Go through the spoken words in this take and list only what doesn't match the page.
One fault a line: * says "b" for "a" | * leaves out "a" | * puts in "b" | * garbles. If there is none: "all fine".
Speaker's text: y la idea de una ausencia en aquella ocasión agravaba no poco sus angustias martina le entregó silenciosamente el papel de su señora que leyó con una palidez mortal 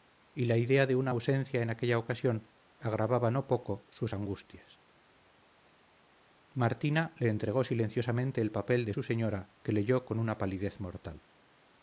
all fine